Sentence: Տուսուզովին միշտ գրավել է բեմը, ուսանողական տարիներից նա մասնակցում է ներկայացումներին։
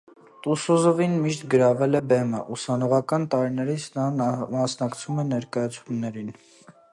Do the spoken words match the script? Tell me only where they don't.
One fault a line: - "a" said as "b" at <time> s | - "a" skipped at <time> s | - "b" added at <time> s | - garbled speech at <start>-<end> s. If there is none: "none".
none